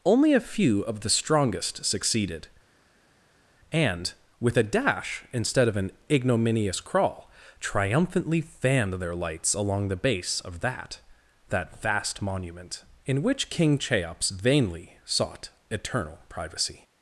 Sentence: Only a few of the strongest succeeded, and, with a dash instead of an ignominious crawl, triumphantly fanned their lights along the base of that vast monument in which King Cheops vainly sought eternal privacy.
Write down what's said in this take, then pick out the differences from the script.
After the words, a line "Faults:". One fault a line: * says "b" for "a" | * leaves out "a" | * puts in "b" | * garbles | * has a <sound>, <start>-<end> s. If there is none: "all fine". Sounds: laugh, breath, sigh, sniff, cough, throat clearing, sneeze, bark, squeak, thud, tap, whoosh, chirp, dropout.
Only a few of the strongest succeeded, and, with a dash instead of an ignominious crawl, triumphantly fanned their lights along the base of that that vast monument in which King Cheops vainly sought eternal privacy.
Faults:
* puts in "that"